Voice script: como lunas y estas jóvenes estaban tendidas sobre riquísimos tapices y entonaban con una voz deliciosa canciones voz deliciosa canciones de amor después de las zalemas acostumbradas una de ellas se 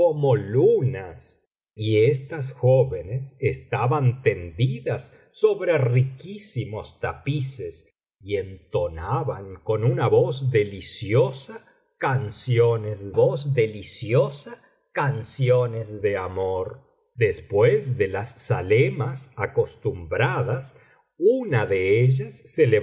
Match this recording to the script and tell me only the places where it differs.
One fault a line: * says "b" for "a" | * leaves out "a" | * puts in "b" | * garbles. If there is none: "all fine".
all fine